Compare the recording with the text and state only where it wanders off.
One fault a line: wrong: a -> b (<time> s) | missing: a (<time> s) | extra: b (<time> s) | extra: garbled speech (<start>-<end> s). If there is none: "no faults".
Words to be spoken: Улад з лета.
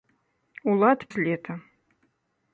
no faults